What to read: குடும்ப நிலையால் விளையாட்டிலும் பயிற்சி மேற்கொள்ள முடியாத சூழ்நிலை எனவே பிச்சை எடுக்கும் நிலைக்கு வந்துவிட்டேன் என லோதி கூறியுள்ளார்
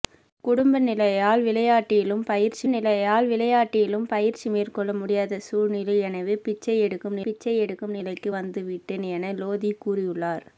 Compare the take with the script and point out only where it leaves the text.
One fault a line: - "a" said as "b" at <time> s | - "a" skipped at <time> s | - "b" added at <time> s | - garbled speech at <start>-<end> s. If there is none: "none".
- "நிலையால் விளையாட்டிலும் பயிற்சி" added at 2.7 s
- "பிச்சை எடுக்கும்" added at 7.2 s